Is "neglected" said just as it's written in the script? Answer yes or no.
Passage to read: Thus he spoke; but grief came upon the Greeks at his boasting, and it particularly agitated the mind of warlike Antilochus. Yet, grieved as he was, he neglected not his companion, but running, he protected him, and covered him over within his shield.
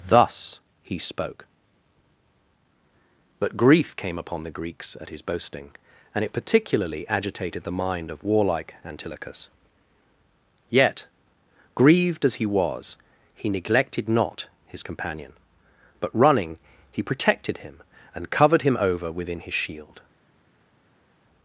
yes